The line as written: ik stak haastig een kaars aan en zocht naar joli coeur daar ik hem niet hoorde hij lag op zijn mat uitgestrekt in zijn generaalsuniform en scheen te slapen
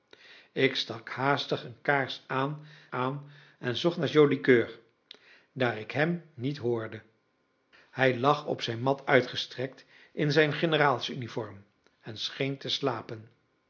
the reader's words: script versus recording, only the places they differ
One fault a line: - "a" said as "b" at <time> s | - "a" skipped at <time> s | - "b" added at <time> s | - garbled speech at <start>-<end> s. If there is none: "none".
- "aan" added at 2.9 s